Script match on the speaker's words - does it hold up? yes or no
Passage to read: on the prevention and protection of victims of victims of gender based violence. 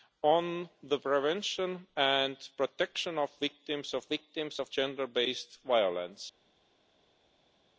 yes